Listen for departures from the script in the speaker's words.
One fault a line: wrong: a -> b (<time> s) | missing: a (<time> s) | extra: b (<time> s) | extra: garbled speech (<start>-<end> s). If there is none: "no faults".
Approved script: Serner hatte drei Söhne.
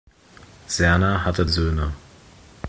missing: drei (1.4 s)